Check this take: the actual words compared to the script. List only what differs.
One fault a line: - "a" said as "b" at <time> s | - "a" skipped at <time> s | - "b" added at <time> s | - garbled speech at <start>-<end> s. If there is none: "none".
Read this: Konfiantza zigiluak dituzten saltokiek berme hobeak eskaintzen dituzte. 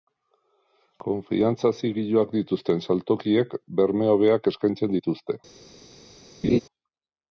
none